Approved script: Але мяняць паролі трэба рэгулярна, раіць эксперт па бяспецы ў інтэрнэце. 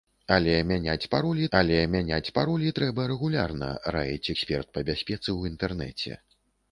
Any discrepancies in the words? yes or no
yes